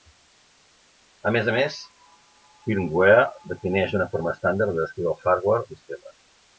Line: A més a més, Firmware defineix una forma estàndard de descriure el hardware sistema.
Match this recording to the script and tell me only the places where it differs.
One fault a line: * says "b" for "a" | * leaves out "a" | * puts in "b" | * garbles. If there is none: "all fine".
all fine